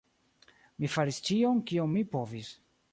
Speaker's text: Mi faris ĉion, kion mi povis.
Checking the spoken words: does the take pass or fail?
pass